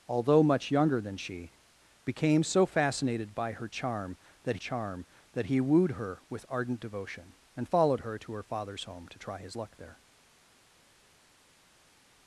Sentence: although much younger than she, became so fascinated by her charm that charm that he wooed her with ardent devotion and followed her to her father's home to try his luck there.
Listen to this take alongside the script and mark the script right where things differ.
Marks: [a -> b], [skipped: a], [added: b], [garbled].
although much younger than she, became so fascinated by her charm that charm that he wooed her with ardent devotion and followed her to her father's home to try his luck there.